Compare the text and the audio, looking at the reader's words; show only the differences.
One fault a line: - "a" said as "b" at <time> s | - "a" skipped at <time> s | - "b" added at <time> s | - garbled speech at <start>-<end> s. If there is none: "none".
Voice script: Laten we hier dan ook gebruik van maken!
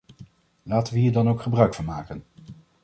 none